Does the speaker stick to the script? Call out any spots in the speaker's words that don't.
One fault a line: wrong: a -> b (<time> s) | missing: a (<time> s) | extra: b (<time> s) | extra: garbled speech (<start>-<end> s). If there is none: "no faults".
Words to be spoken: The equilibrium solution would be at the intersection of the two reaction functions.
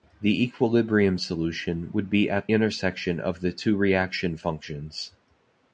missing: the (2.5 s)